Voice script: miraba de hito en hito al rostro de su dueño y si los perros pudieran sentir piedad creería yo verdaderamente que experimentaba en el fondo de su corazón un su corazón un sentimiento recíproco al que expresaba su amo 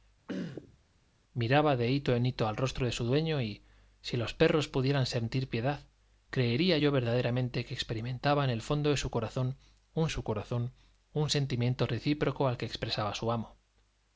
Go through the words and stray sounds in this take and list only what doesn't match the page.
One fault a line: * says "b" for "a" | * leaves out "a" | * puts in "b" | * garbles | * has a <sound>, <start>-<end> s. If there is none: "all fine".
* has a throat clearing, 0.3-0.8 s